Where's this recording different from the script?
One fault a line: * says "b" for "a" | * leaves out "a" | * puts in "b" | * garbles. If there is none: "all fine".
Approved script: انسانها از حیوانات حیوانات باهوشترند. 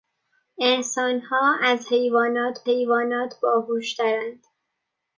all fine